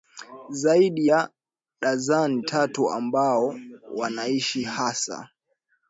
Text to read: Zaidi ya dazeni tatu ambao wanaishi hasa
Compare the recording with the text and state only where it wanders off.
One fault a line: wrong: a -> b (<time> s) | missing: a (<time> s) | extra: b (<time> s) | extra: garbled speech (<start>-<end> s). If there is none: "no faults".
no faults